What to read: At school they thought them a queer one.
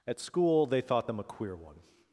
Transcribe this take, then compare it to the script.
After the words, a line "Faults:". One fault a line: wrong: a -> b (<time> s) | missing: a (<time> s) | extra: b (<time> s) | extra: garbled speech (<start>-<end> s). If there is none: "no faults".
At school they thought them a queer one.
Faults:
no faults